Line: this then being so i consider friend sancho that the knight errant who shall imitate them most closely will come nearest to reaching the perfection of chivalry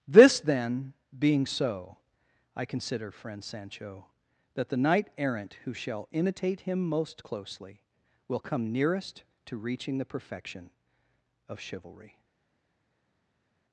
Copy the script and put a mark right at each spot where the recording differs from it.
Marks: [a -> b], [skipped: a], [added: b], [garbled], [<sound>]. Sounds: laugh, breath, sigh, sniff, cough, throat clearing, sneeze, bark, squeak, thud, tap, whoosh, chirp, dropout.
this then being so i consider friend sancho that the knight errant who shall imitate [them -> him] most closely will come nearest to reaching the perfection of chivalry